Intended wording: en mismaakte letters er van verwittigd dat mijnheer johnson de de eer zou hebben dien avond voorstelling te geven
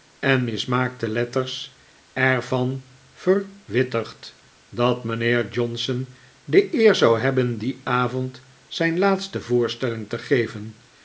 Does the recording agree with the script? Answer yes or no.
no